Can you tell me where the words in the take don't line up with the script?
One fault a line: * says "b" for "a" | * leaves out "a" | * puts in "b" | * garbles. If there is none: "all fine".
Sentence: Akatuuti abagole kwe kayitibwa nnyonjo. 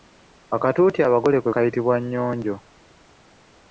all fine